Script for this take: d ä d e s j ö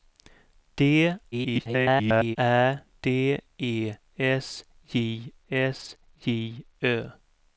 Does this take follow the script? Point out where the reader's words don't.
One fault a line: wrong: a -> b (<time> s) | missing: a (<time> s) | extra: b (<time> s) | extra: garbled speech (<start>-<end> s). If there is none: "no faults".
extra: garbled speech (1.3-2.4 s)
extra: s j (5.5 s)